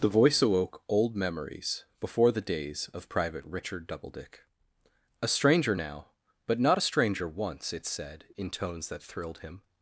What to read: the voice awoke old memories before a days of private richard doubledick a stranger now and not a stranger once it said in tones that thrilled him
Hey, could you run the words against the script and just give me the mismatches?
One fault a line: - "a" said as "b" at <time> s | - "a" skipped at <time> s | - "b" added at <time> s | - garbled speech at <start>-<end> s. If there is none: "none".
- "a" said as "the" at 2.3 s
- "and" said as "but" at 6.5 s